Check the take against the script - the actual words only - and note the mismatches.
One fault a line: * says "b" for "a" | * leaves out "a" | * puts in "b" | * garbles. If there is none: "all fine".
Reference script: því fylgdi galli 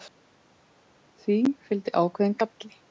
* puts in "ákveðinn"